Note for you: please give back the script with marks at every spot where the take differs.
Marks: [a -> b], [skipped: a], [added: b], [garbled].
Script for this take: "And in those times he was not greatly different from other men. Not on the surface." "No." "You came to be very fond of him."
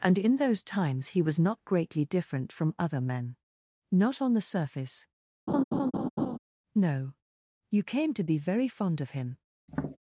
"And in those times he was not greatly different from other men. Not on the surface." "No." "You came to be very fond of him."